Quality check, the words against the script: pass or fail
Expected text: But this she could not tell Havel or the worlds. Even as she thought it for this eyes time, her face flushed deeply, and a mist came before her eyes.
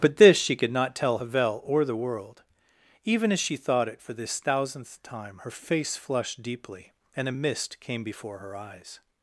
fail